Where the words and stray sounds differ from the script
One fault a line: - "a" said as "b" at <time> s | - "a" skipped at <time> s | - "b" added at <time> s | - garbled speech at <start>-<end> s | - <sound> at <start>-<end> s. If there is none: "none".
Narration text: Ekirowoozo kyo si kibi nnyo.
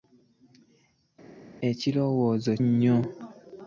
- "kyo si kibi" skipped at 2.5 s